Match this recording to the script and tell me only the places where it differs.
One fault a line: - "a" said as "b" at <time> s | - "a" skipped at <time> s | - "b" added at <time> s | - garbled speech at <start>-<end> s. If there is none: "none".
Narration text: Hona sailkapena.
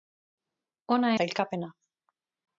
none